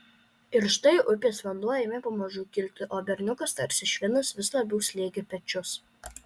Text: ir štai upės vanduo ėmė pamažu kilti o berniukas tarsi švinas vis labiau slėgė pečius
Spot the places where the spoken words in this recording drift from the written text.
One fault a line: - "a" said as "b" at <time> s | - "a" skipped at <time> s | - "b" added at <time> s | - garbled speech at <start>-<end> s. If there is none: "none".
none